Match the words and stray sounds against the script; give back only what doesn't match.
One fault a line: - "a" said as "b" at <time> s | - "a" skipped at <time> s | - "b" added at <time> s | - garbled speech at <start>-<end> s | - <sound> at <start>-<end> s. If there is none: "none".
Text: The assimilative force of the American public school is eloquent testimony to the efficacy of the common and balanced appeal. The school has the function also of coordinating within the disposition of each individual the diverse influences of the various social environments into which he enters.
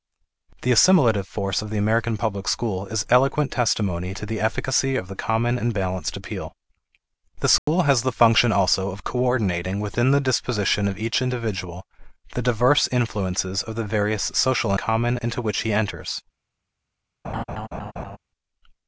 - dropout at 7.6-7.7 s
- "environments" said as "common" at 14.7 s
- laugh at 17.2-18.2 s